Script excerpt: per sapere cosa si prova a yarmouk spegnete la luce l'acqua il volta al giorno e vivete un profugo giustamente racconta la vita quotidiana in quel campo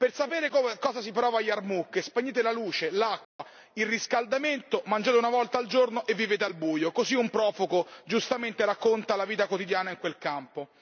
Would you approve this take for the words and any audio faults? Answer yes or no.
no